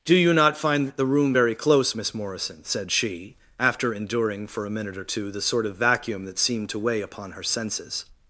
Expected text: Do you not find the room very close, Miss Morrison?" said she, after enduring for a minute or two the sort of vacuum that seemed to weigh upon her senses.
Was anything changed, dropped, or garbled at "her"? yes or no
no